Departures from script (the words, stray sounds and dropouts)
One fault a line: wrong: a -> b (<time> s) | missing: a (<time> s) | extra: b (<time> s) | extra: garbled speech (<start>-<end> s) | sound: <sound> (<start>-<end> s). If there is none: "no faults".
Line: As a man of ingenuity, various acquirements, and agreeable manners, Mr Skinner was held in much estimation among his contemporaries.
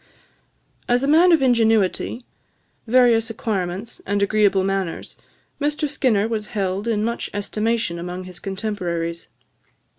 no faults